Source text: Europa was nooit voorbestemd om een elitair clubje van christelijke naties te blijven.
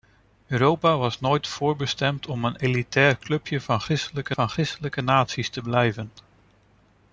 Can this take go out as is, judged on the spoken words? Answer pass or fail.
fail